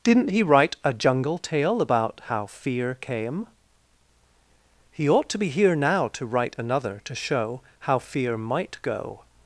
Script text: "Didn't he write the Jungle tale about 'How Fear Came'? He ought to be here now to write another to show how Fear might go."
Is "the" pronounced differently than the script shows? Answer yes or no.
yes